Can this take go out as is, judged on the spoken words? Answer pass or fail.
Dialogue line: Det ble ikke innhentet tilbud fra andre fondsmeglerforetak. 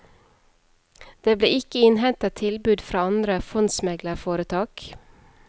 pass